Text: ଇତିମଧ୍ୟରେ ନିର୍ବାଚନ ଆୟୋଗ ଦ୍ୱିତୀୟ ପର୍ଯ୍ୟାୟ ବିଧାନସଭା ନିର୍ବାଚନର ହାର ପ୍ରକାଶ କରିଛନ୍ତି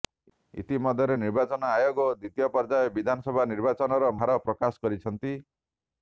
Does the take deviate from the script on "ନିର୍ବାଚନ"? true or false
false